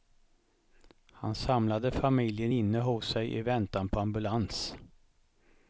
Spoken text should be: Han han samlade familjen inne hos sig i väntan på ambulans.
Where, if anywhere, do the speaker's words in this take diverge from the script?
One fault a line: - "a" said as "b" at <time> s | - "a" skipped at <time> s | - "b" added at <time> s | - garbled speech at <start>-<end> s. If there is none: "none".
- "han" skipped at 1.4 s